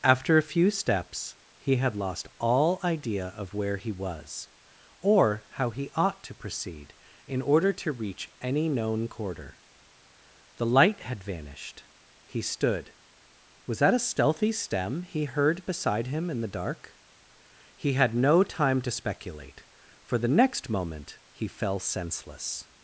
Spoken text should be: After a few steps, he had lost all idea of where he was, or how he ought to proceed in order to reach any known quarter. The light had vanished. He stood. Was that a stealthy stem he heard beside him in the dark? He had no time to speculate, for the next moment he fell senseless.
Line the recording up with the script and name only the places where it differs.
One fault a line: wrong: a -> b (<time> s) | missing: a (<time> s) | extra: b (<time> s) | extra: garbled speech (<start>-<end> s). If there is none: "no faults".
no faults